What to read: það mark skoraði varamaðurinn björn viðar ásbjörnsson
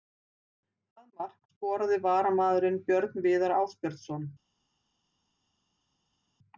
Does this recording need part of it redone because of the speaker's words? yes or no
no